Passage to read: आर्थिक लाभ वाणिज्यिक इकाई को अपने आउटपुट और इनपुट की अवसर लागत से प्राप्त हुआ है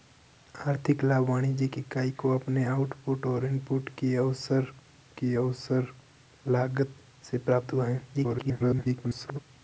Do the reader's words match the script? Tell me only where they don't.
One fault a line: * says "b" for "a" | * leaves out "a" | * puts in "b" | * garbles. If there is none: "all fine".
* puts in "की अवसर"
* garbles